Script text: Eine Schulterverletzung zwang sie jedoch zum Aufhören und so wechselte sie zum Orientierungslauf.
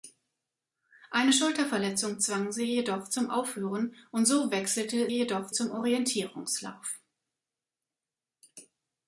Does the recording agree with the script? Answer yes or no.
no